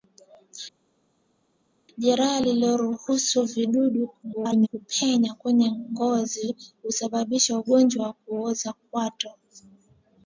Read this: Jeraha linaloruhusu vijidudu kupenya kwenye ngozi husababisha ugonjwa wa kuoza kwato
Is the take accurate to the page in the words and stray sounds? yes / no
no